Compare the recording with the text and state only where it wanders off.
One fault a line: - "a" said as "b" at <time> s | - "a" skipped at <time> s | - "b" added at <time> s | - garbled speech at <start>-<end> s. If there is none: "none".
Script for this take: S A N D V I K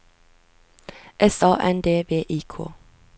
none